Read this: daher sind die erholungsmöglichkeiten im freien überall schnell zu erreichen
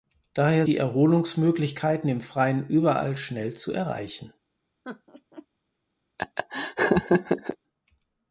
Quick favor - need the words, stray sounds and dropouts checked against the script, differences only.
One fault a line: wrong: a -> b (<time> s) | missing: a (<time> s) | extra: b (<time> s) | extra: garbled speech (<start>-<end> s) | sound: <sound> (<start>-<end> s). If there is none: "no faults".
missing: sind (0.7 s)
sound: laugh (4.8-5.5 s)
sound: laugh (6.2-7.6 s)